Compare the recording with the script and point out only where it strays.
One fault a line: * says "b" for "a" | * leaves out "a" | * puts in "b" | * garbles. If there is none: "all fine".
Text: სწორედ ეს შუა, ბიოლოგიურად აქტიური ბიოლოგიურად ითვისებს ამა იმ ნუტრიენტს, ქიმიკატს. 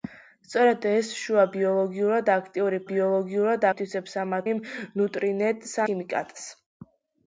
all fine